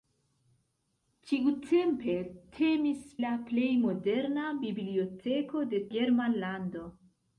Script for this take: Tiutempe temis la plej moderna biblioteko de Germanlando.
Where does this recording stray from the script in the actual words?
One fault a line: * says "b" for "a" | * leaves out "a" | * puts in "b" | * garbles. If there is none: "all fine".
all fine